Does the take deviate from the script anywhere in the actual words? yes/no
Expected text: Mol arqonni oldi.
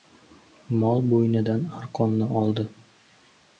yes